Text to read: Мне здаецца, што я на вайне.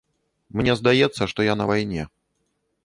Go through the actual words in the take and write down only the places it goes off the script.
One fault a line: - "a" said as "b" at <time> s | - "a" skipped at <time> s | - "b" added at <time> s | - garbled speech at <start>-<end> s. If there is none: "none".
none